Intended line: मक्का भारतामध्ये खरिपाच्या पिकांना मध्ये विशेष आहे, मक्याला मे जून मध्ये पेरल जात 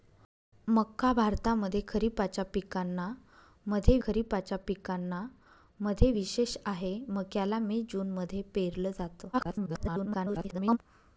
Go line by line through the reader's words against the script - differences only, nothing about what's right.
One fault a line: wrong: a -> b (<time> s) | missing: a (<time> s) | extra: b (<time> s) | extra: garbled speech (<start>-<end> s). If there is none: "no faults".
extra: खरिपाच्या पिकांना मध्ये (4.0 s)
extra: garbled speech (9.3-10.8 s)